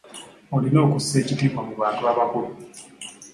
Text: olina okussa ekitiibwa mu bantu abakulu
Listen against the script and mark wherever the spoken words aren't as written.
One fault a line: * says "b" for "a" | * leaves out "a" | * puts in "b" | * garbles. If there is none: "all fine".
all fine